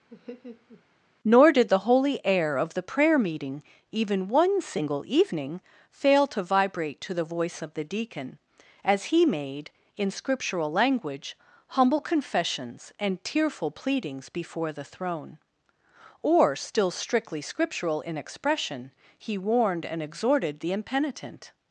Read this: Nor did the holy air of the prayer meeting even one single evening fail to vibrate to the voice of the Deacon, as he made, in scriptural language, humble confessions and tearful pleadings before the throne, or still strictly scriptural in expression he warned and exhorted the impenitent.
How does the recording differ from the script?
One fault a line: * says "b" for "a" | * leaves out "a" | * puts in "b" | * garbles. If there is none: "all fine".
all fine